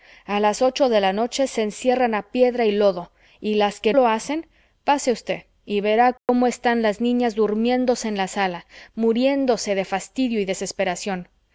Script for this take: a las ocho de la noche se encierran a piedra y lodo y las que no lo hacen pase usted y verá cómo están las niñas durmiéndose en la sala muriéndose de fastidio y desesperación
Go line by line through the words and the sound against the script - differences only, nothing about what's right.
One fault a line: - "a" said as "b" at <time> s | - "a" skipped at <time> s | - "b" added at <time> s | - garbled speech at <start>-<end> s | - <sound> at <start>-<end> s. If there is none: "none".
- "no" skipped at 3.9 s
- dropout at 6.2-6.3 s